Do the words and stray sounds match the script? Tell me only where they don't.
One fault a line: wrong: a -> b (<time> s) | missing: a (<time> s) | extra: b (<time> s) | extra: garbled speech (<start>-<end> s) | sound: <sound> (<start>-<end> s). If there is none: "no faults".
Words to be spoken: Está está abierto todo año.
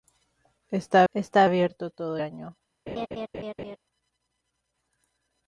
sound: laugh (2.9-3.8 s)